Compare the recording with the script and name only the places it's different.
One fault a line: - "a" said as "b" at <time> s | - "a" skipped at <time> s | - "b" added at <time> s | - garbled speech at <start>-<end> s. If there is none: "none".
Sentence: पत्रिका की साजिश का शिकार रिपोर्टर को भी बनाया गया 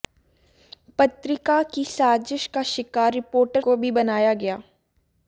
none